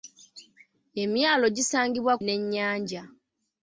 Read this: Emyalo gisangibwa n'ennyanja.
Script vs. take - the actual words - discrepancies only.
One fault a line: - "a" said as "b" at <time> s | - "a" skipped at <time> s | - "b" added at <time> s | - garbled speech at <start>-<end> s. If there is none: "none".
none